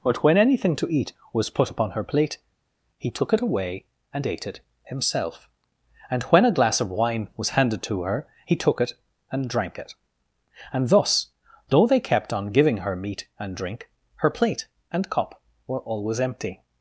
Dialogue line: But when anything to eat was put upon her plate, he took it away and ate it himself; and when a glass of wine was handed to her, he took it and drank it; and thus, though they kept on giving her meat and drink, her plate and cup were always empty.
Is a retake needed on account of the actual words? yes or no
no